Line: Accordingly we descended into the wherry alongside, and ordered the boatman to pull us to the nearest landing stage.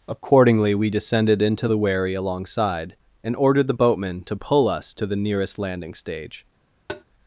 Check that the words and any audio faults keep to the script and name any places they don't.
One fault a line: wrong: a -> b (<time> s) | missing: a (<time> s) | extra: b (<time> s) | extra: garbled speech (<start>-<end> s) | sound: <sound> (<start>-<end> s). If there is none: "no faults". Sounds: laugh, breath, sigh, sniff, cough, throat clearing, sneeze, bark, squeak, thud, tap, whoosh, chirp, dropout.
sound: tap (6.9-7.0 s)